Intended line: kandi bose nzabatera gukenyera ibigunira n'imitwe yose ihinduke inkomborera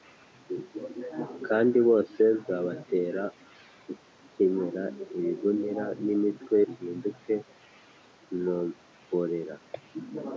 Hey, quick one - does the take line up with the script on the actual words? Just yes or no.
no